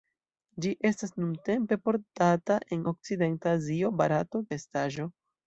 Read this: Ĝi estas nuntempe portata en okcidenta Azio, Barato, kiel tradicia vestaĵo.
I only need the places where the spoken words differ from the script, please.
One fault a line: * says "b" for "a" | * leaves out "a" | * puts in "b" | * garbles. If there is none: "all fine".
* leaves out "kiel tradicia"